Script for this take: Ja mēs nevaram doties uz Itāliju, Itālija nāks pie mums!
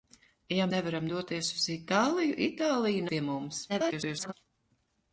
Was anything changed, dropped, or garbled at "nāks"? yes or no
yes